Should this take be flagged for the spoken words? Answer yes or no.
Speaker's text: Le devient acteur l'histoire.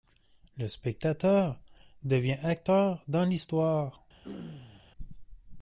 yes